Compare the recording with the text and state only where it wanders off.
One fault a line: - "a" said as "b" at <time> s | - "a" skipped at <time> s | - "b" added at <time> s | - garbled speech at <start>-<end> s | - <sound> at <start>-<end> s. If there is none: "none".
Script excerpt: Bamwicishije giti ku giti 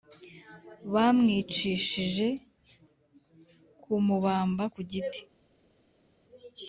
- "giti" said as "kumubamba" at 3.8 s